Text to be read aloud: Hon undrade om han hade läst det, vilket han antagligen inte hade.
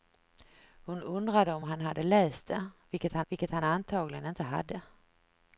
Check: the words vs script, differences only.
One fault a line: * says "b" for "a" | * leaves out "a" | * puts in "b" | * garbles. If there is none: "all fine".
* puts in "vilket han"